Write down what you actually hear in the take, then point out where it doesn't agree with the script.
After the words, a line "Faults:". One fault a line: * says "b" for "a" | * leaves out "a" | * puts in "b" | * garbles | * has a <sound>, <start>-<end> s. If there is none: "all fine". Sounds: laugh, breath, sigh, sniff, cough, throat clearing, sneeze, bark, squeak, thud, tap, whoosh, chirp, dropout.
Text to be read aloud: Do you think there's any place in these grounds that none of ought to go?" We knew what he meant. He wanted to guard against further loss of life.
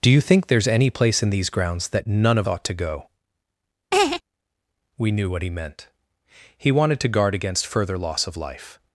Do you think there's any place in these grounds that none of ought to go?" We knew what he meant. He wanted to guard against further loss of life.
Faults:
* has a laugh, 3.9-4.2 s